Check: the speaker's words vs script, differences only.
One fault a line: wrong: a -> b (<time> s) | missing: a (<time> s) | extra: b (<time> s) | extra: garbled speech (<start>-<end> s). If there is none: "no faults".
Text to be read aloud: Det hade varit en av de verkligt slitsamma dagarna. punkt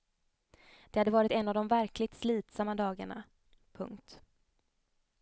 no faults